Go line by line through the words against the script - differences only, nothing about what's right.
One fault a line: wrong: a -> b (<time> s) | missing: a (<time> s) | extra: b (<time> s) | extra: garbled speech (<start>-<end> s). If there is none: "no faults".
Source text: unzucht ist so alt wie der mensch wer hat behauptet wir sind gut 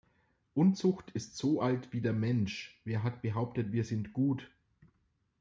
no faults